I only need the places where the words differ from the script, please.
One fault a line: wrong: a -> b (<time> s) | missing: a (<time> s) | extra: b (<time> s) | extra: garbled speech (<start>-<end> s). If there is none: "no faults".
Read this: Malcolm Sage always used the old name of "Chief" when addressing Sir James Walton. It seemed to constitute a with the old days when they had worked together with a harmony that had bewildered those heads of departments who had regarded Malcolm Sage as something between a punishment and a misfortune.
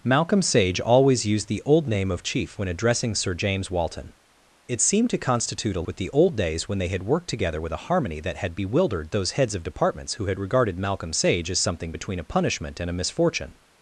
no faults